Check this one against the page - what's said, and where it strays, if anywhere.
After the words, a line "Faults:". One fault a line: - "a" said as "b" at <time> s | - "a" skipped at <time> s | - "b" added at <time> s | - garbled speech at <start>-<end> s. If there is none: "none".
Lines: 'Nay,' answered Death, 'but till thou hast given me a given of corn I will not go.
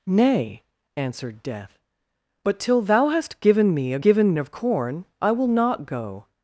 'Nay,' answered Death, 'but till thou hast given me a given of corn I will not go.
Faults:
none